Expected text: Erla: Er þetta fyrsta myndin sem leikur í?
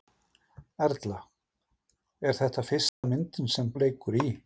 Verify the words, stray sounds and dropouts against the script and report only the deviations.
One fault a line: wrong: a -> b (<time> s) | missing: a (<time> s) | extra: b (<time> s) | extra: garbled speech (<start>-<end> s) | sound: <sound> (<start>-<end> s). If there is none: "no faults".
sound: dropout (2.9-3.0 s)